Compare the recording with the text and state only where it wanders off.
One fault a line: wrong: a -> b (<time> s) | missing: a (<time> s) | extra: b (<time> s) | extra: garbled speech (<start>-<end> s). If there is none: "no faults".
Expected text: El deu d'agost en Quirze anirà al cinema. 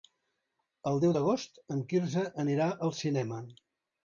no faults